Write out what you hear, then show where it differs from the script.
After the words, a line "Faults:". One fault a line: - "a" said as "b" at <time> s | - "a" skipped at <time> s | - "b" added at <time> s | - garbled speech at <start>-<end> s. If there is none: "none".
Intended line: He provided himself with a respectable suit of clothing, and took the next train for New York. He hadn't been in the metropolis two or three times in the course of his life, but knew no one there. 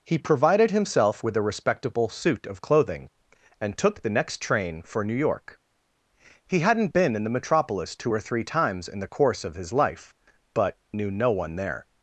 He provided himself with a respectable suit of clothing, and took the next train for New York. He hadn't been in the metropolis two or three times in the course of his life, but knew no one there.
Faults:
none